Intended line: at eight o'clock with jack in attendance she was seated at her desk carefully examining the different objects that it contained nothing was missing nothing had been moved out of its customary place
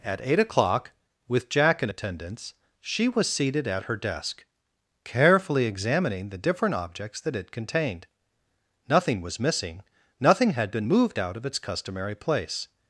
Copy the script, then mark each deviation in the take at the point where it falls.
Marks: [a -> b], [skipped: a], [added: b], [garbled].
at eight o'clock with jack in attendance she was seated at her desk carefully examining the different objects that it contained nothing was missing nothing had been moved out of its customary place